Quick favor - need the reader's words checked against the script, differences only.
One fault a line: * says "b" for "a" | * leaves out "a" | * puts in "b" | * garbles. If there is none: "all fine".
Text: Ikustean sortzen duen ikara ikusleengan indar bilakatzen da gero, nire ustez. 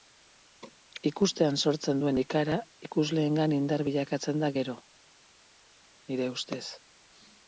all fine